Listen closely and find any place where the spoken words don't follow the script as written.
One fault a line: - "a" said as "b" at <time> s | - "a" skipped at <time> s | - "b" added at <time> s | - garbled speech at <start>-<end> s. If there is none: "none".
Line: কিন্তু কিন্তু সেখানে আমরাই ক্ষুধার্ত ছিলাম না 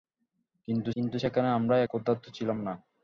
none